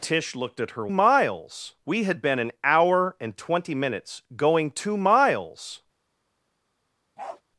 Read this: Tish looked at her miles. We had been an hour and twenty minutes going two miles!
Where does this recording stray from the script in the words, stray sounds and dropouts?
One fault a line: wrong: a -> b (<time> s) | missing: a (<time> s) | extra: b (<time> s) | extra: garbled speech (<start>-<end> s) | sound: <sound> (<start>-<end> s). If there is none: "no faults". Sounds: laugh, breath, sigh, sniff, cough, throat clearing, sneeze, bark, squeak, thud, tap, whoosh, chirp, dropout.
sound: bark (7.2-7.4 s)